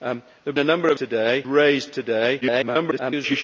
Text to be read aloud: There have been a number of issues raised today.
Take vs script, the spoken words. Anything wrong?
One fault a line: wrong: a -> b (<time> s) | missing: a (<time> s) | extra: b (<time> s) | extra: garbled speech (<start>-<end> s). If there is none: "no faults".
missing: been (0.6 s)
wrong: issues -> today (1.0 s)
extra: garbled speech (2.4-3.4 s)